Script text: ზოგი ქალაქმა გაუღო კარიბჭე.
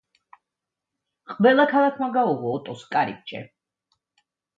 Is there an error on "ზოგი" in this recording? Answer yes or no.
yes